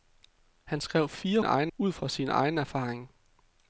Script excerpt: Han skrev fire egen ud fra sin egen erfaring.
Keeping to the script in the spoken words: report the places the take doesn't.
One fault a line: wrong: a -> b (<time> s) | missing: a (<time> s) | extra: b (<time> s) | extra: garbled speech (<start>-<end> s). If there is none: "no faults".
no faults